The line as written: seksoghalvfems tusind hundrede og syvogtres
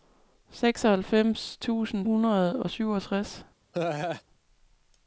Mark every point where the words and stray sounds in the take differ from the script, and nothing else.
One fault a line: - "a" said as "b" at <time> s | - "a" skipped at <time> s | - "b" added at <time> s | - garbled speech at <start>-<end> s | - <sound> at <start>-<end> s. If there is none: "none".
- laugh at 3.7-4.2 s